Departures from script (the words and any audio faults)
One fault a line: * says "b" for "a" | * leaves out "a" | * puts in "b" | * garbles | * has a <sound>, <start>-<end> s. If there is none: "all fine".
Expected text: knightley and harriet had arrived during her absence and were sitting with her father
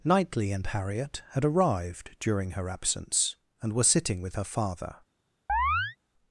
* has a chirp, 5.5-6.0 s